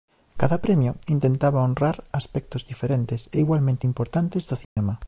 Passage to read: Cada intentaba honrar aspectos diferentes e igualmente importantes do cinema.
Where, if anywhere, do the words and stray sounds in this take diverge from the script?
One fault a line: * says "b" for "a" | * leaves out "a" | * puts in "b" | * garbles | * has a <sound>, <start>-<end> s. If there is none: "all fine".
* puts in "premio"
* has a dropout, 4.6-4.8 s